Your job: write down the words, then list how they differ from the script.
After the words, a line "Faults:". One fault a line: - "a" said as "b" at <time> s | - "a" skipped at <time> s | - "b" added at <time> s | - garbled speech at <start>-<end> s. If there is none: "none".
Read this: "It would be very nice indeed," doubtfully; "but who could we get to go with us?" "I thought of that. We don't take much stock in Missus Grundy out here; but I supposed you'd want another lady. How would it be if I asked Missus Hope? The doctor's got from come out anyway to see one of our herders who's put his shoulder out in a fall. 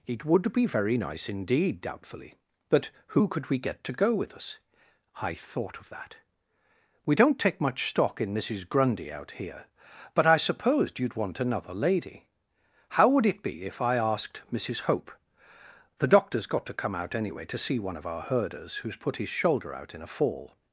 "It would be very nice indeed," doubtfully; "but who could we get to go with us?" "I thought of that. We don't take much stock in Missus Grundy out here; but I supposed you'd want another lady. How would it be if I asked Missus Hope? The doctor's got to come out anyway to see one of our herders who's put his shoulder out in a fall.
Faults:
- "from" said as "to" at 16.7 s